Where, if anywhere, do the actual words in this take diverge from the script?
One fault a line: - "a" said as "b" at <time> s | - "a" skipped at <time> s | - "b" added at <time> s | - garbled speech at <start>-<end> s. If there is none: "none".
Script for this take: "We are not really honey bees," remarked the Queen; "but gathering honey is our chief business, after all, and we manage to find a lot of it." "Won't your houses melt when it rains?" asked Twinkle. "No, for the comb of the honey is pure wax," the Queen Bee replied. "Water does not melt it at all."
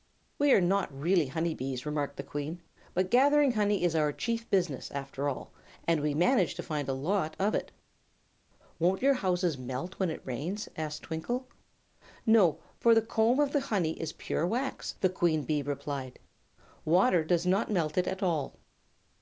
none